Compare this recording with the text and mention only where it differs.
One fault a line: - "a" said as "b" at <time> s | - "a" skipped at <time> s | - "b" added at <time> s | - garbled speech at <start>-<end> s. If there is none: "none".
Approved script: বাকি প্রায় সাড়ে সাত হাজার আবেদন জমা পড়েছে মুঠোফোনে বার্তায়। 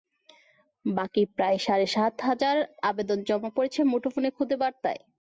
- "খুদে" added at 4.4 s